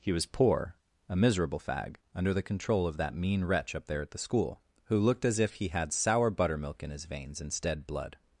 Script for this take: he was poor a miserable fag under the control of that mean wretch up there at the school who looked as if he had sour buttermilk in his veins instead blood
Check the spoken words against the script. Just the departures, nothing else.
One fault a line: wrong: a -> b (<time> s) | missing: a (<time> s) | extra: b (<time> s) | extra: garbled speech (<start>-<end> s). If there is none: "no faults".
no faults